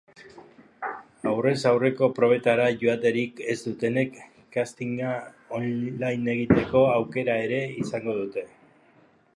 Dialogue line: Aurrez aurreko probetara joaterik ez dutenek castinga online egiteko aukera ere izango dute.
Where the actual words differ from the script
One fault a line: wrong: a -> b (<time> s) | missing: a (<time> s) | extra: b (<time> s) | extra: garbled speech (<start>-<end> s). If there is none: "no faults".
no faults